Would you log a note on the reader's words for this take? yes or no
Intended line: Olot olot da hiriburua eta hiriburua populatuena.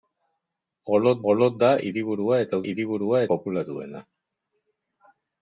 no